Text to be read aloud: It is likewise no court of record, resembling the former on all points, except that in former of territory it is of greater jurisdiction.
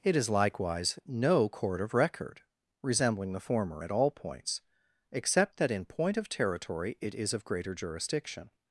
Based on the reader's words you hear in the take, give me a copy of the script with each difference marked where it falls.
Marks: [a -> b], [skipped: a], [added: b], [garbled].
It is likewise no court of record, resembling the former [on -> at] all points, except that in [former -> point] of territory it is of greater jurisdiction.